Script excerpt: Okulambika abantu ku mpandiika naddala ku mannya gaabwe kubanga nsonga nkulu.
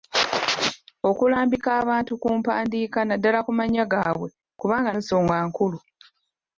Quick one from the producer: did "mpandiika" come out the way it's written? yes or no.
yes